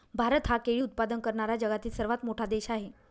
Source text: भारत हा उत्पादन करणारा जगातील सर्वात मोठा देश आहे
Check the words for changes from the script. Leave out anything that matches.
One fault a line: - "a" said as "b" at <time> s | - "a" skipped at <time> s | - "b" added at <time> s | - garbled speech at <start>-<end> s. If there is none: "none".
- "केळी" added at 0.6 s